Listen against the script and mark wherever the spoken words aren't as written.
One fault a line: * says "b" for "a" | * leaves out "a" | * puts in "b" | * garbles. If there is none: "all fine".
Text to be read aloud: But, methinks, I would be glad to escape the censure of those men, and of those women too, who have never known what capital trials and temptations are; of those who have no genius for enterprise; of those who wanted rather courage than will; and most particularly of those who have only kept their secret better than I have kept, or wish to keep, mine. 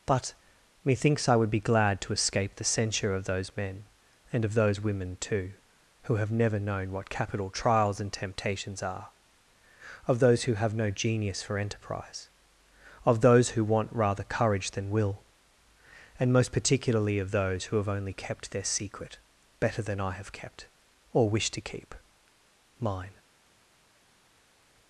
* says "want" for "wanted"